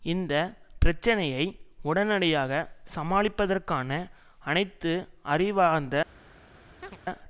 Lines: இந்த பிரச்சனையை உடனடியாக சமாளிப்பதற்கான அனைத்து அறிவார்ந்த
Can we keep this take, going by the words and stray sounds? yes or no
no